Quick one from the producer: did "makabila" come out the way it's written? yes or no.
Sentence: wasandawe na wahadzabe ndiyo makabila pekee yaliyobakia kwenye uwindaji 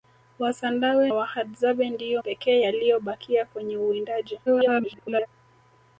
no